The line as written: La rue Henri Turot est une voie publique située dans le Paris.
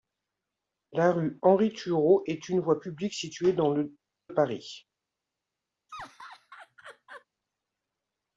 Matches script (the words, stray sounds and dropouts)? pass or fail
fail